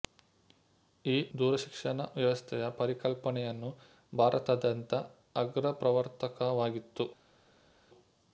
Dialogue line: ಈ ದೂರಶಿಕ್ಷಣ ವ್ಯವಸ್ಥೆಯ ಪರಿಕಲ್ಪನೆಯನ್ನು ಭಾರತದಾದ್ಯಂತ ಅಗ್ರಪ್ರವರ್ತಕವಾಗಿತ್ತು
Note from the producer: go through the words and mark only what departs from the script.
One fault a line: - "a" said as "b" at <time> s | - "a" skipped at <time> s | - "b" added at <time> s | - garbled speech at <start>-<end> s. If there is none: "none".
none